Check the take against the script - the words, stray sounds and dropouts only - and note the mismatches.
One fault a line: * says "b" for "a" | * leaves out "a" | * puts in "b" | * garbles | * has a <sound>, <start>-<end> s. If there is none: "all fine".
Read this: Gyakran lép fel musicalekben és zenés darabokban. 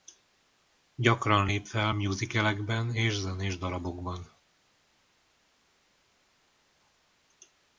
all fine